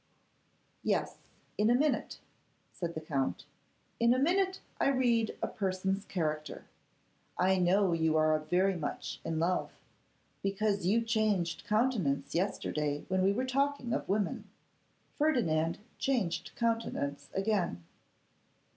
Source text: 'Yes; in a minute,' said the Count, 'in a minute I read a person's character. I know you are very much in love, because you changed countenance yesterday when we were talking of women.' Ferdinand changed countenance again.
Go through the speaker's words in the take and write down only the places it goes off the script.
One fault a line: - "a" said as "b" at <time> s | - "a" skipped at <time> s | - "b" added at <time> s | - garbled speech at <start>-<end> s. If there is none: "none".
none